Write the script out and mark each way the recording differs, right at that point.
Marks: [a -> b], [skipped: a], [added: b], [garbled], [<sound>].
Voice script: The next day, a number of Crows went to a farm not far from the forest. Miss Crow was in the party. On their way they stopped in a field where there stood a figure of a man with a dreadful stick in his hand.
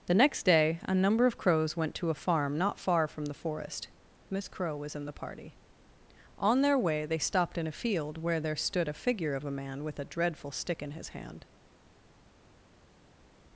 The next day, a number of Crows went to a farm not far from the forest. Miss Crow was in the party. On their way they stopped in a field where there stood a figure of a man with a dreadful stick in his hand.